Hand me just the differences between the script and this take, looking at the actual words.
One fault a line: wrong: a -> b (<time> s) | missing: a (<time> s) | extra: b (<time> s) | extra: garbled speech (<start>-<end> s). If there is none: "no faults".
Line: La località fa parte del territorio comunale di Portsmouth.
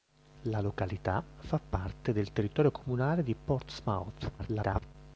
extra: garbled speech (4.4-5.0 s)